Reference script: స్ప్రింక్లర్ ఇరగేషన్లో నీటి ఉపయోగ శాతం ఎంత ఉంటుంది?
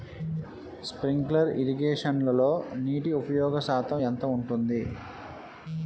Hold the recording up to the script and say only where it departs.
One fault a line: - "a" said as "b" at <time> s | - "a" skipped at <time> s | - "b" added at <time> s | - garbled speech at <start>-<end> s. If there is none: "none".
none